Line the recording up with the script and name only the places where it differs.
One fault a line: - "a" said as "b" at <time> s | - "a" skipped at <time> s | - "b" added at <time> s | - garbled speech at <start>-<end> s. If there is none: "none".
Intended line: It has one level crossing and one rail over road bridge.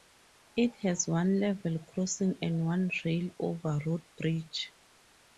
none